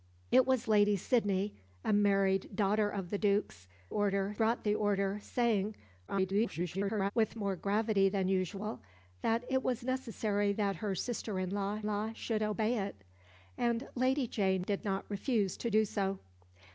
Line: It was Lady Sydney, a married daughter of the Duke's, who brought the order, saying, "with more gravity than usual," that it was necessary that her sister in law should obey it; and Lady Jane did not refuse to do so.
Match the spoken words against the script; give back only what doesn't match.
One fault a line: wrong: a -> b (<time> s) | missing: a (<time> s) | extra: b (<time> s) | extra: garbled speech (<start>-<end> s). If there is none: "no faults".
wrong: who -> order (3.9 s)
extra: garbled speech (6.1-7.1 s)
extra: law (11.8 s)